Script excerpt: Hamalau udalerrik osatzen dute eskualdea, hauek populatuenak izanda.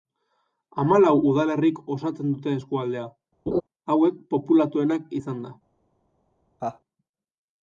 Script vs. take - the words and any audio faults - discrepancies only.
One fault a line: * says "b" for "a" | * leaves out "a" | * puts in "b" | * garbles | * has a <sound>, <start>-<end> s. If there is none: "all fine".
* has a laugh, 3.5-3.6 s
* has a laugh, 6.6-6.8 s